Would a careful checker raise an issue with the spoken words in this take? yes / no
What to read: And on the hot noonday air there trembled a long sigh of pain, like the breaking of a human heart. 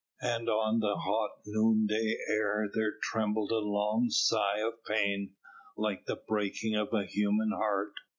no